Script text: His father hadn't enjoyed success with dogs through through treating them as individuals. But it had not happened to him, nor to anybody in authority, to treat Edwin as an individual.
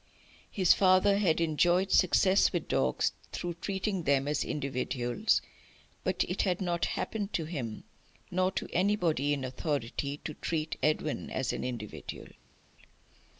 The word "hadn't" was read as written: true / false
false